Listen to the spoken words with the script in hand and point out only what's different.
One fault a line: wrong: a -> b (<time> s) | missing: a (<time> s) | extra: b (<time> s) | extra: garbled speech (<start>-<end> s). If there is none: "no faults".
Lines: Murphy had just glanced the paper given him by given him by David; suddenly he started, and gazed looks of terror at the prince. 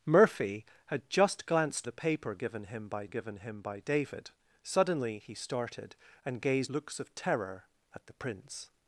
no faults